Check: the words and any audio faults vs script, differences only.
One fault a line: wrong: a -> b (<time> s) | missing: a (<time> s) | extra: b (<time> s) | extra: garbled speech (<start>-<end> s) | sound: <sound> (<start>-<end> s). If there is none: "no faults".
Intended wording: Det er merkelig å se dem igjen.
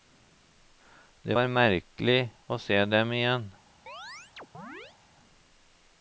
wrong: er -> var (1.3 s)
sound: chirp (3.9-5.0 s)